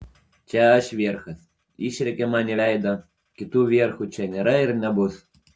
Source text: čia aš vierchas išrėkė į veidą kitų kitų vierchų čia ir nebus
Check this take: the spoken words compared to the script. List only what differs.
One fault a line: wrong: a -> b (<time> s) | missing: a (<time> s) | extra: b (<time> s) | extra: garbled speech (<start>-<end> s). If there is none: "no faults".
extra: man (2.4 s)
missing: kitų (3.7 s)
extra: nėra (4.4 s)